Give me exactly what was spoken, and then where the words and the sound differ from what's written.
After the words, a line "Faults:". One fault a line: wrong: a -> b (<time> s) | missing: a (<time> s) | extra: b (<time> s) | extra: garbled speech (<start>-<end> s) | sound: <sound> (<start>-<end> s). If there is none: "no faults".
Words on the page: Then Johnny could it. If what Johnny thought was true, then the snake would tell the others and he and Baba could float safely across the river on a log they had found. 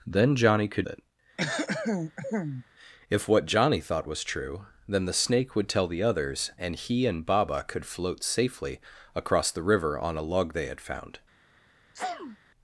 Then Johnny could it. If what Johnny thought was true, then the snake would tell the others and he and Baba could float safely across the river on a log they had found.
Faults:
sound: throat clearing (1.4-2.6 s)
sound: sneeze (11.9-12.4 s)